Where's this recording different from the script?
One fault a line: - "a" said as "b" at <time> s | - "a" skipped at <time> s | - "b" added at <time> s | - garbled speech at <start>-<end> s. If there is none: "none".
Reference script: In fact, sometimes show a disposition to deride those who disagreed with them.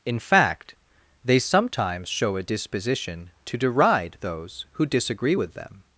- "they" added at 1.2 s
- "disagreed" said as "disagree" at 4.8 s